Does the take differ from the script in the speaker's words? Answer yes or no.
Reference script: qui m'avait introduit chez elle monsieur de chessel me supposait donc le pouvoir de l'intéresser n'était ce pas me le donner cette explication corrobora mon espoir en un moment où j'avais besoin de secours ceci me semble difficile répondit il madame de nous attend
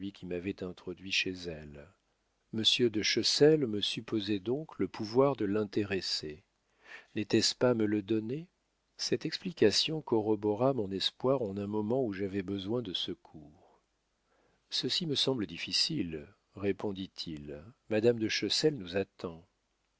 yes